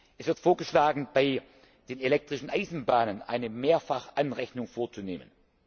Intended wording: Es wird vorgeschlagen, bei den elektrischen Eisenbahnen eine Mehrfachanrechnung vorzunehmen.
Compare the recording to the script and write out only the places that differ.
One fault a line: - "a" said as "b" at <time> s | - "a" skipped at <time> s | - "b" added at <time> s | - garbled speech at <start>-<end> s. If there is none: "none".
none